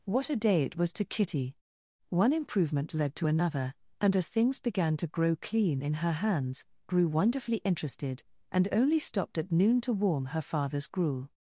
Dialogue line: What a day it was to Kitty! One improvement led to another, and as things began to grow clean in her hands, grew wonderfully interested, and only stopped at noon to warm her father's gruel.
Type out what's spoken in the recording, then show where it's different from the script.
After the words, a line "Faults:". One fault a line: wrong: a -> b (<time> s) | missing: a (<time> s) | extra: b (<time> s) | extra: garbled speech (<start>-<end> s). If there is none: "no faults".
What a day it was to Kitty! One improvement led to another, and as things began to grow clean in her hands, grew wonderfully interested, and only stopped at noon to warm her father's gruel.
Faults:
no faults